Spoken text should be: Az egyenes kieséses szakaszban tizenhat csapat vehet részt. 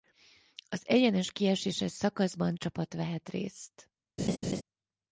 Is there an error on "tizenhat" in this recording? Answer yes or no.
yes